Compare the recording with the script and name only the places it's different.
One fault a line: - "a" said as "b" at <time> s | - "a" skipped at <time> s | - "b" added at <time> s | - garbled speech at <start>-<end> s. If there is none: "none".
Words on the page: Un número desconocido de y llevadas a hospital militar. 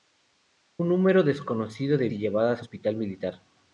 none